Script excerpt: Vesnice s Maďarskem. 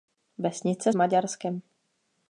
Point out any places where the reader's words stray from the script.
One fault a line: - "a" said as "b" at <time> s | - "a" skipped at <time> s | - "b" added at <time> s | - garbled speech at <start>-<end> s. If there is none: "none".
none